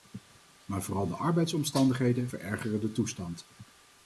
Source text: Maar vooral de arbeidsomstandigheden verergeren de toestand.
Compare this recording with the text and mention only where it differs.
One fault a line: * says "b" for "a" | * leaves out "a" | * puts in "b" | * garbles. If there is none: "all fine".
all fine